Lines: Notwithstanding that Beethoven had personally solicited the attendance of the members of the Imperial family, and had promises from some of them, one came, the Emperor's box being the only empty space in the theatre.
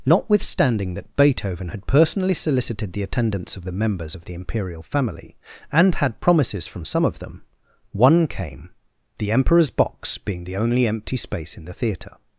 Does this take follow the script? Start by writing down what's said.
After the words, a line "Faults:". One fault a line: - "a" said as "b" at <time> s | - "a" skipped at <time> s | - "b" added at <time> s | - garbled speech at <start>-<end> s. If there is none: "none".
Notwithstanding that Beethoven had personally solicited the attendance of the members of the Imperial family, and had promises from some of them, one came, the Emperor's box being the only empty space in the theatre.
Faults:
none